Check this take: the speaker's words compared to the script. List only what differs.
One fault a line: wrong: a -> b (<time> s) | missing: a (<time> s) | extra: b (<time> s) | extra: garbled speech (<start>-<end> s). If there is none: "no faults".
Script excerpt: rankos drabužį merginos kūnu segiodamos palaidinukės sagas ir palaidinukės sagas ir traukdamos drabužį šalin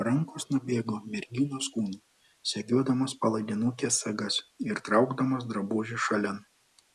wrong: drabužį -> nubėgo (0.5 s)
missing: palaidinukės sagas ir (4.8 s)